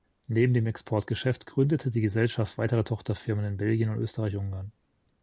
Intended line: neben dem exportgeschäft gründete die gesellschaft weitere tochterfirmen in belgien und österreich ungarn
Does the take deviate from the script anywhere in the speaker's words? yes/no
no